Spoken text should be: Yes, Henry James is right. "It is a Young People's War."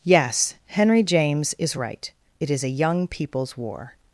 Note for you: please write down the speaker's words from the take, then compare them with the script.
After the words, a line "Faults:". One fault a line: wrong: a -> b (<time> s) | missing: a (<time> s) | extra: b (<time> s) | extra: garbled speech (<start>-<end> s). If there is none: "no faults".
Yes, Henry James is right. "It is a Young People's War."
Faults:
no faults